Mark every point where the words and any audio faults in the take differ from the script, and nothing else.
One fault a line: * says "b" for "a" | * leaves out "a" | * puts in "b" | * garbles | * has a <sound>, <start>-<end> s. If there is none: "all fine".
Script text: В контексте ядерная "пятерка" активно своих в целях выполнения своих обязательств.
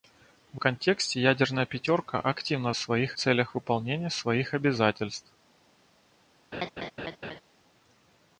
* has a laugh, 6.5-7.4 s